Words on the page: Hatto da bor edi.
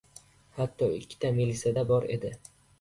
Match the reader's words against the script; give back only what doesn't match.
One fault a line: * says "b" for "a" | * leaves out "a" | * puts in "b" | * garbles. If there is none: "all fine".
* puts in "ikkita melisa"